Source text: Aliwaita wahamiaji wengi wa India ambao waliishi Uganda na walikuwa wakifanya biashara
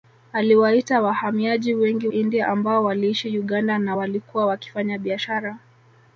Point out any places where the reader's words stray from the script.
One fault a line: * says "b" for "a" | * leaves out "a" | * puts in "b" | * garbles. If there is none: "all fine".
* leaves out "wa"